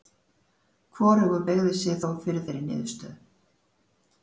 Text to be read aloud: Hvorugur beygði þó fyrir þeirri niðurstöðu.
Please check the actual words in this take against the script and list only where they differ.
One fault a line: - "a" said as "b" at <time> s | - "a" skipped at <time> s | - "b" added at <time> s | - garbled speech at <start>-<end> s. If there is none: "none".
- "sig" added at 1.8 s